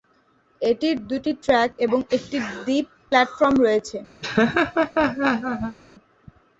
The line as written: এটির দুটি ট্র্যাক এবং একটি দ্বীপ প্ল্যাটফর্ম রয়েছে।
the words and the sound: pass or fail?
fail